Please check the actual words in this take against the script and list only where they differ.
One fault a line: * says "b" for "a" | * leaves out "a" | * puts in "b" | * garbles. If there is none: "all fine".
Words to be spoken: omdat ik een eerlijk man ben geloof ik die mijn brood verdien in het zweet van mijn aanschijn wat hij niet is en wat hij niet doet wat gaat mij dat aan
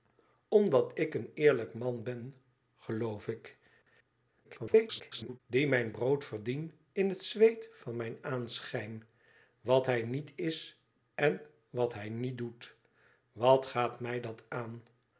* garbles